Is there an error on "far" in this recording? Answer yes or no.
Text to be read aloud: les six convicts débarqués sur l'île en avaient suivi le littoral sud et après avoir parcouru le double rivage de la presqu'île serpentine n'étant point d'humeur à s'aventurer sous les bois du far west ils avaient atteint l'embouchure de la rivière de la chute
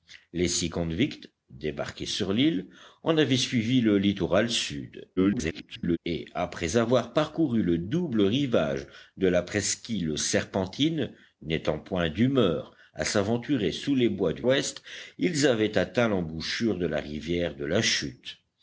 yes